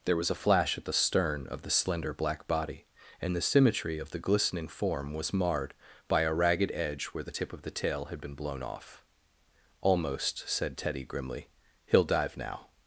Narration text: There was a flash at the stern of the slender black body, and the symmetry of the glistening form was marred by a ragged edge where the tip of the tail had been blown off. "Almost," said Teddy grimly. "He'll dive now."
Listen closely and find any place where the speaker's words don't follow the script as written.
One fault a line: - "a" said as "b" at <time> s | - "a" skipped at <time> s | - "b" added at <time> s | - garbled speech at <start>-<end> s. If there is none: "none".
none